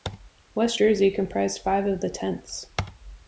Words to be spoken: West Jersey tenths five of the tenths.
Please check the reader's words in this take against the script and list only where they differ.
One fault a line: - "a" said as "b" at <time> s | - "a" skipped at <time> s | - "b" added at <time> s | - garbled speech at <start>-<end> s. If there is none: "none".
- "tenths" said as "comprised" at 1.1 s